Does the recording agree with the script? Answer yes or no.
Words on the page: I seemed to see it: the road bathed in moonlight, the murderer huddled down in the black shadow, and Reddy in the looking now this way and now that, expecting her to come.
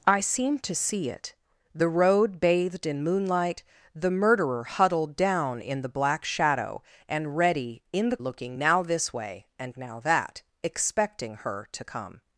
yes